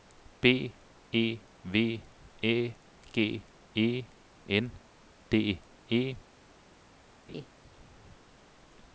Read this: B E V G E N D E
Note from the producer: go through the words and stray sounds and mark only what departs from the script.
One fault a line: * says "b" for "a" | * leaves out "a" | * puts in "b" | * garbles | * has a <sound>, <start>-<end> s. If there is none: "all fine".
* puts in "Æ"
* has a laugh, 7.3-7.5 s